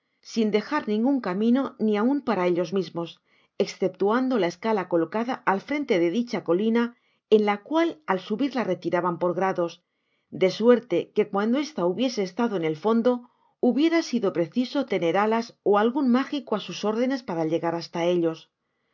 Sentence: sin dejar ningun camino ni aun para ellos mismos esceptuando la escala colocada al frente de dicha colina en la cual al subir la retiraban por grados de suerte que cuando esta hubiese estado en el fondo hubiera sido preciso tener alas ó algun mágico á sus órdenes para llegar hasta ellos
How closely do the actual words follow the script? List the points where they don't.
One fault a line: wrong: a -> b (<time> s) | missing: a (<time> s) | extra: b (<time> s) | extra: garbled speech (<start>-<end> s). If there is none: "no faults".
no faults